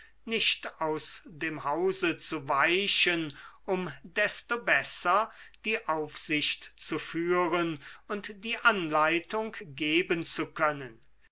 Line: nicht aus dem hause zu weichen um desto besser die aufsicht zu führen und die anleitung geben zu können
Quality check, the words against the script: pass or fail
pass